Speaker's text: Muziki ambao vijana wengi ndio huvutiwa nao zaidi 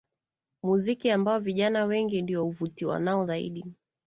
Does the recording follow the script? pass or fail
pass